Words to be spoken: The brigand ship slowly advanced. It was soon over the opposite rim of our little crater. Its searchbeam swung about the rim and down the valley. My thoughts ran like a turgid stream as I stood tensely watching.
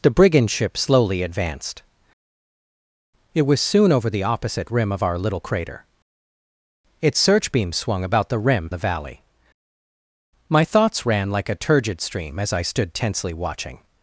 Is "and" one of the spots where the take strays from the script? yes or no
yes